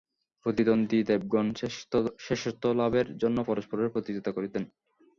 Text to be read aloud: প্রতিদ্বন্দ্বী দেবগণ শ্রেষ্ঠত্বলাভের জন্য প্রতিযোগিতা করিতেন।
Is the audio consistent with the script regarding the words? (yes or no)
no